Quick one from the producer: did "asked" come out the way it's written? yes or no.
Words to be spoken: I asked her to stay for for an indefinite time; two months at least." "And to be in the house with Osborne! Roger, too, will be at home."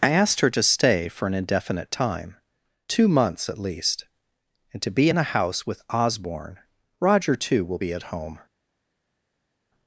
yes